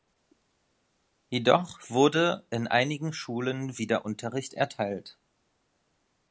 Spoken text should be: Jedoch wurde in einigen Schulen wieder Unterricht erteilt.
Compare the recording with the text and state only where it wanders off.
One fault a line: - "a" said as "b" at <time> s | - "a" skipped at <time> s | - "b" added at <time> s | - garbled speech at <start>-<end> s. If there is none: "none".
none